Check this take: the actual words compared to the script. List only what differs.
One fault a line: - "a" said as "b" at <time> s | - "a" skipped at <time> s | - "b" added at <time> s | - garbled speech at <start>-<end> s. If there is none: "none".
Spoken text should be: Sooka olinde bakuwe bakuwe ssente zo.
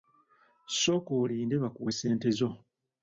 - "bakuwe" skipped at 1.9 s